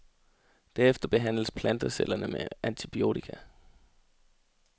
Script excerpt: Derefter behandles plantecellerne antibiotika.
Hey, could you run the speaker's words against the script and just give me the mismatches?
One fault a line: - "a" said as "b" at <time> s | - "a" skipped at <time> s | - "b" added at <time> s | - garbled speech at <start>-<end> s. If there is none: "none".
- "med" added at 2.3 s